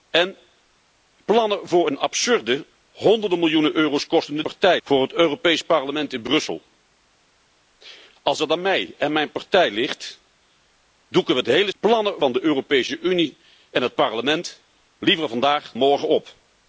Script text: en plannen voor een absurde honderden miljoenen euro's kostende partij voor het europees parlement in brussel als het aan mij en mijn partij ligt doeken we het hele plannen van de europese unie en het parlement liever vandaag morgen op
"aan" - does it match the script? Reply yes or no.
yes